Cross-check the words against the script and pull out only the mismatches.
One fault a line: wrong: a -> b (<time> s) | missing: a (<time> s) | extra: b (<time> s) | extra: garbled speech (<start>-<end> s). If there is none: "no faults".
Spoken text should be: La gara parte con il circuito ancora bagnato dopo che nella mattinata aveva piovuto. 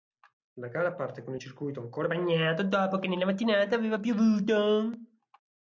no faults